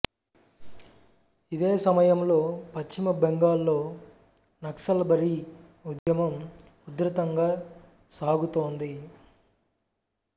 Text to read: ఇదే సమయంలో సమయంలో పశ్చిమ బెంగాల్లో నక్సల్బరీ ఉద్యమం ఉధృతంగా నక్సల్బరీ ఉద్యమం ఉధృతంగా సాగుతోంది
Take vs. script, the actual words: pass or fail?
fail